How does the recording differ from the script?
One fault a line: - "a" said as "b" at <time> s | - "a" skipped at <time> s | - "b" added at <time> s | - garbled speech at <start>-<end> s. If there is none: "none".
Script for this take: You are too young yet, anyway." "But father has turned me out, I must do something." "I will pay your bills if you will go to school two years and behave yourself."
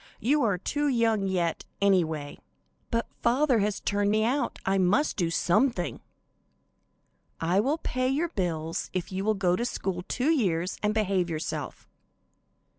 none